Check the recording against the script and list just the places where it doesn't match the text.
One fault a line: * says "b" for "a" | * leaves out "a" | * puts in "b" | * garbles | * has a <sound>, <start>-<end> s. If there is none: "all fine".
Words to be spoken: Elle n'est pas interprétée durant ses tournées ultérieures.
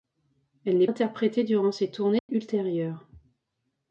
* leaves out "pas"
* has a dropout, 2.2-2.3 s